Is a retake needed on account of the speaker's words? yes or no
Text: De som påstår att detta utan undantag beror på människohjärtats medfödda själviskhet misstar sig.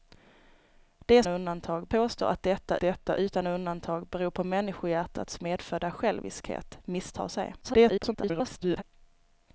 yes